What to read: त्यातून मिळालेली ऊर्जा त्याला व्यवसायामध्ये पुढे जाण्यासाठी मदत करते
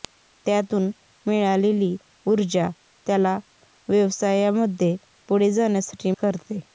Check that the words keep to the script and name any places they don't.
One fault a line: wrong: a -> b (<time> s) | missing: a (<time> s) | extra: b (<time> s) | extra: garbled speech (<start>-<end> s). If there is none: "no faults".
missing: मदत (6.1 s)